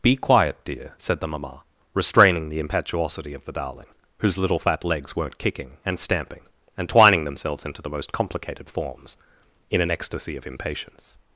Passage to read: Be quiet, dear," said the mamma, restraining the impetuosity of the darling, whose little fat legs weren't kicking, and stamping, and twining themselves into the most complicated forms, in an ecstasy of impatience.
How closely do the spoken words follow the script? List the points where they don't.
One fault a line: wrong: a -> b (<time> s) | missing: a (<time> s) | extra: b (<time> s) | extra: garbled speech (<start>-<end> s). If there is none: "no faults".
no faults